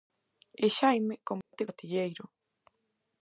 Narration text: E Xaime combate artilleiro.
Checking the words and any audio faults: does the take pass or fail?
fail